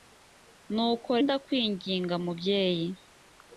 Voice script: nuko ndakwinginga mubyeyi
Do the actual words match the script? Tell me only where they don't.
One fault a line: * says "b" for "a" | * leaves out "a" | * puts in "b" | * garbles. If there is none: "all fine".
all fine